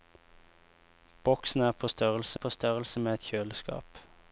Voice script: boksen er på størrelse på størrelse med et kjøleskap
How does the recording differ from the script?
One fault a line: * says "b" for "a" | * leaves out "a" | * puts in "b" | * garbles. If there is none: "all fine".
all fine